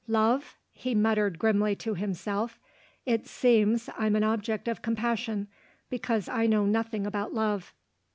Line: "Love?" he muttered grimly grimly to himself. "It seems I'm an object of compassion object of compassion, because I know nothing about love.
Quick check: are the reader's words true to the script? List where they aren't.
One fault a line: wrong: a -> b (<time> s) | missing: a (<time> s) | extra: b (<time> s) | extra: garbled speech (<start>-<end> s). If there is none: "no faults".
missing: grimly (1.7 s)
missing: object of compassion (5.5 s)